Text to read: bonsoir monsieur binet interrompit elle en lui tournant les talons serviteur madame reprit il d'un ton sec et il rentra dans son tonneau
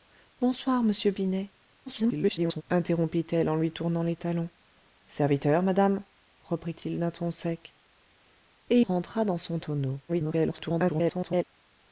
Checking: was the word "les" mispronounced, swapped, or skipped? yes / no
no